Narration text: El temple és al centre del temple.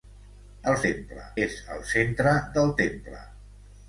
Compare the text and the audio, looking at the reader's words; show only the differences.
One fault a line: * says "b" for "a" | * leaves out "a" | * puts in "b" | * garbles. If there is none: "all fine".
all fine